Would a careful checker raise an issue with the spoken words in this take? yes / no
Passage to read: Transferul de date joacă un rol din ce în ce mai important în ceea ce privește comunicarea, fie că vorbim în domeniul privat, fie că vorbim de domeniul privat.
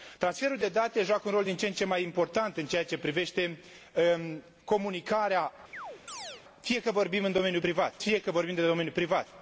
no